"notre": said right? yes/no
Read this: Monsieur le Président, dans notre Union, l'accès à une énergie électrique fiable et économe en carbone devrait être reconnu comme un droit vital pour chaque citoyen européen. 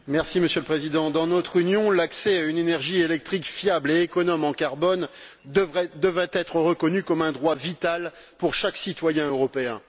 yes